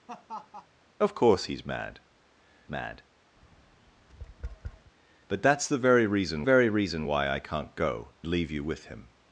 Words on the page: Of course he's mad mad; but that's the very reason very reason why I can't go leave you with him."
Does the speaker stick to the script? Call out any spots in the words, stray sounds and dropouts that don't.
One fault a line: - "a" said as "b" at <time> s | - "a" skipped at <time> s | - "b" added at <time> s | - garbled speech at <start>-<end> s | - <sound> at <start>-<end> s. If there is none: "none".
- laugh at 0.1-0.7 s
- tap at 3.4-4.9 s